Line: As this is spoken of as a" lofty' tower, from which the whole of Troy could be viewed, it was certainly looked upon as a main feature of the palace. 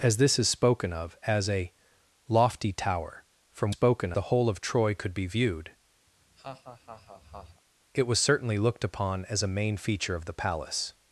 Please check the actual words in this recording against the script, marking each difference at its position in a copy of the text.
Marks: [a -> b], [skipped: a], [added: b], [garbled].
As this is spoken of as a" lofty' tower, from [which -> spoken] the whole of Troy could be viewed, it was certainly looked upon as a main feature of the palace.